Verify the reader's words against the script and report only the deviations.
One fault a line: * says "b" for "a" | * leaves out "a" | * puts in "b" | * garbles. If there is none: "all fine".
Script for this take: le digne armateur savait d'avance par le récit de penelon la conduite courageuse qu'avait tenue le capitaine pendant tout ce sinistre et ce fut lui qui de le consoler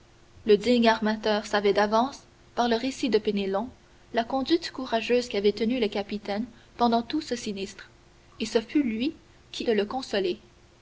all fine